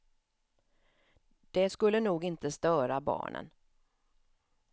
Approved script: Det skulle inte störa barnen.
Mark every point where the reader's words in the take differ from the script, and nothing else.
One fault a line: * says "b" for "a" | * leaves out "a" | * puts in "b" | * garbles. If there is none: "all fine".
* puts in "nog"